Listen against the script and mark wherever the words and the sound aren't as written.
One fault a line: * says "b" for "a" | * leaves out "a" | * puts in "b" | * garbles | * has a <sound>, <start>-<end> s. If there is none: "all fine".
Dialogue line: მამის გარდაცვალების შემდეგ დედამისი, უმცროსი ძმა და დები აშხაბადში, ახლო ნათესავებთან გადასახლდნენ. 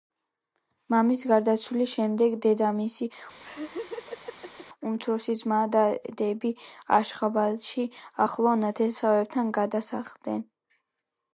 * has a laugh, 3.4-4.7 s